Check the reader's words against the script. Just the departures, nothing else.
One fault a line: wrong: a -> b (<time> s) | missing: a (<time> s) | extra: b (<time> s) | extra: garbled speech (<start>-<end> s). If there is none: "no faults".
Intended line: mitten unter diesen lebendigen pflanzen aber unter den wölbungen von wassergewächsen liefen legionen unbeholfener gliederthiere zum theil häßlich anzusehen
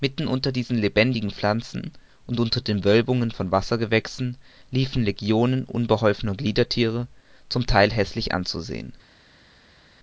wrong: aber -> und (2.2 s)